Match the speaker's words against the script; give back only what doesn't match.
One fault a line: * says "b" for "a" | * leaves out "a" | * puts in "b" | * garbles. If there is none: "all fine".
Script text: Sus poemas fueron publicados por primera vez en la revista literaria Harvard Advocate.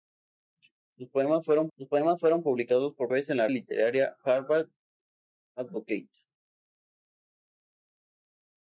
* puts in "sus poemas fueron"
* leaves out "primera"
* leaves out "revista"